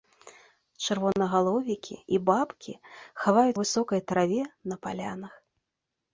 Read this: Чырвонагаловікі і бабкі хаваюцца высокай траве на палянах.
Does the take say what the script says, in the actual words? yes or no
yes